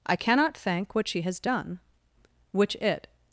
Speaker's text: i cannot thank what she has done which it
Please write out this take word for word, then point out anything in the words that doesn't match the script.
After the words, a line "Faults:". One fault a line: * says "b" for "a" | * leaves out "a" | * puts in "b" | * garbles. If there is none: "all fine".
i cannot thank what she has done which it
Faults:
all fine